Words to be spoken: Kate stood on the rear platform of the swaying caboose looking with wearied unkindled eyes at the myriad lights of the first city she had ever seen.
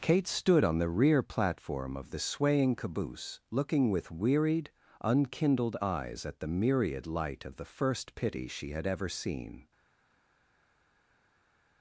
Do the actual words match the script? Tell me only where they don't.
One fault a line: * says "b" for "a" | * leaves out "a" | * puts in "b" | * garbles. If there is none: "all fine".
* says "light" for "lights"
* says "pity" for "city"